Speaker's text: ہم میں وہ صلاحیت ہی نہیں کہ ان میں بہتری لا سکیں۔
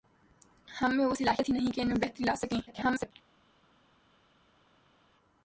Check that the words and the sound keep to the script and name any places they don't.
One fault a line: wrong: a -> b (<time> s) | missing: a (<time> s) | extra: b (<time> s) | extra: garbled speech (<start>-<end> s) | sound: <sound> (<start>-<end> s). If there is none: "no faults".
extra: garbled speech (2.7-3.1 s)